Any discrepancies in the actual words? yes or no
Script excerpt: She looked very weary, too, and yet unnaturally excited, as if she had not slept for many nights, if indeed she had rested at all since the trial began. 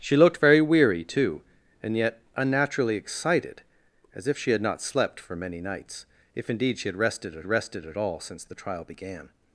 yes